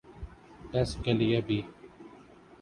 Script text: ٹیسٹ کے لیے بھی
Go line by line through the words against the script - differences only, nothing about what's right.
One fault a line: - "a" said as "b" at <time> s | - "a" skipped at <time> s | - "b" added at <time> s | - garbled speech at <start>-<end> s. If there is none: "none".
none